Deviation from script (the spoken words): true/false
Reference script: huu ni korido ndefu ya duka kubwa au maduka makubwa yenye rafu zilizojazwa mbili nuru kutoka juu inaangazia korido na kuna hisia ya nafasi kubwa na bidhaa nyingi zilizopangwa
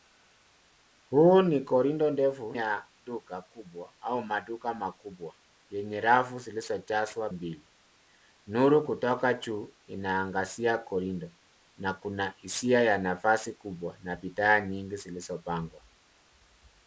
false